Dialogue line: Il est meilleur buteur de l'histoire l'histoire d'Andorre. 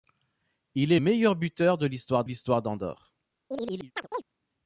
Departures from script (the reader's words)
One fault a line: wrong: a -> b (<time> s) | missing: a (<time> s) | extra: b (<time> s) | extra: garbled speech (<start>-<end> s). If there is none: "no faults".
no faults